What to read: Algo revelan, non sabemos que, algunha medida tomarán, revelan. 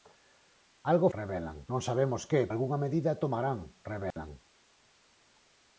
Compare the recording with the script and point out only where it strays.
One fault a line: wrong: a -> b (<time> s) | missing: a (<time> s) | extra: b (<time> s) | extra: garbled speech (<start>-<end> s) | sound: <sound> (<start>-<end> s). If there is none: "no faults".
sound: dropout (4.1-4.2 s)